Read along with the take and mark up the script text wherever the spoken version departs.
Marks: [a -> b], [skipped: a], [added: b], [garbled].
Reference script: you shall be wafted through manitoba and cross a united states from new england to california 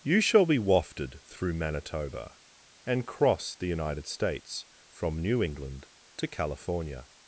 you shall be wafted through manitoba and cross [a -> the] united states from new england to california